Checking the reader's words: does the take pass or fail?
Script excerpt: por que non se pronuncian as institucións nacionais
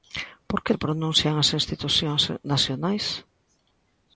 fail